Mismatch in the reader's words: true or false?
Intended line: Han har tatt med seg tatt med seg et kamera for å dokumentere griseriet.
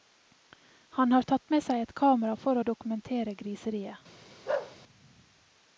true